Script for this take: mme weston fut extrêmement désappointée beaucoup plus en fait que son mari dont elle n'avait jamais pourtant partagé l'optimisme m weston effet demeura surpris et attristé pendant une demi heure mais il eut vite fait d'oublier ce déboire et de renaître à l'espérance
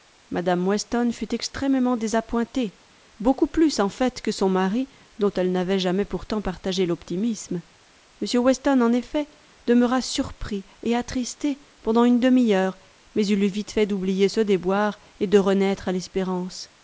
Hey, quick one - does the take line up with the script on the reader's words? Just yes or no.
no